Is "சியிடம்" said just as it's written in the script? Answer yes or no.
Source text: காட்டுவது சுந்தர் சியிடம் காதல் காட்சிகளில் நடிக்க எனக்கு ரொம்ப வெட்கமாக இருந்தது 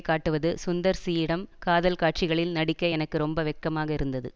yes